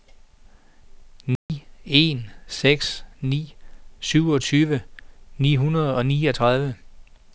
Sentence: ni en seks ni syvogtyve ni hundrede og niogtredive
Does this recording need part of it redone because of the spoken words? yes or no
no